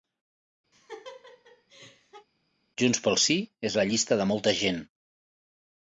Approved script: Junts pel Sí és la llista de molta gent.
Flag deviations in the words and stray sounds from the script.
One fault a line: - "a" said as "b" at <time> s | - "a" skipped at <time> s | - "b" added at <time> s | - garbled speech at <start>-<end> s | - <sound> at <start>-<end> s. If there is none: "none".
- laugh at 0.7-2.3 s